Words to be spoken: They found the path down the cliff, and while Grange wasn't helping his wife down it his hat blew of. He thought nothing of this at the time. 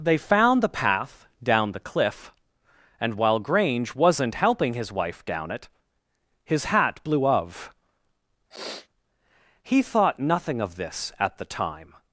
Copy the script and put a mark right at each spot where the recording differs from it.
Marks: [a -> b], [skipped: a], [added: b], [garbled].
They found the path down the cliff, and while Grange wasn't helping his wife down it his hat blew of. He thought nothing of this at the time.